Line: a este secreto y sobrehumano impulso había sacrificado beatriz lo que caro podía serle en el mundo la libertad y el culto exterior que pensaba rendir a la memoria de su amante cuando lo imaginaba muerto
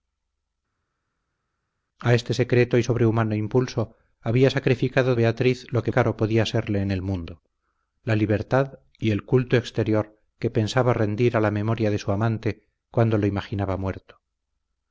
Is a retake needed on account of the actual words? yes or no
no